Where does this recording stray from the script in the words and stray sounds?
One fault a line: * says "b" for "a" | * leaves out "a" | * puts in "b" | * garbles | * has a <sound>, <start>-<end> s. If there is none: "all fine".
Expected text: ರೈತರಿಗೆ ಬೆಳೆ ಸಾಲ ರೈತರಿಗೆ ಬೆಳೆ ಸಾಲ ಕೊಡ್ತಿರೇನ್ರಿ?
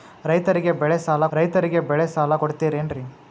all fine